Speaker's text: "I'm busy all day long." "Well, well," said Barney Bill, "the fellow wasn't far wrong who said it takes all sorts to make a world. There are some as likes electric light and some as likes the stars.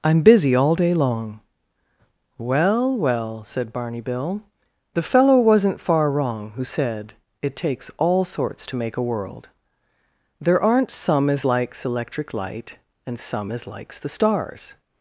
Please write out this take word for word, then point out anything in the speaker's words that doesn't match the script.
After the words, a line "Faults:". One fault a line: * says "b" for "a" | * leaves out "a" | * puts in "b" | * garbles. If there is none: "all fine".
"I'm busy all day long." "Well, well," said Barney Bill, "the fellow wasn't far wrong who said it takes all sorts to make a world. There aren't some as likes electric light and some as likes the stars.
Faults:
* says "aren't" for "are"